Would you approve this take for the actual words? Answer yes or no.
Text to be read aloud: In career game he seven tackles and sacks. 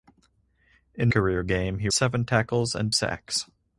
yes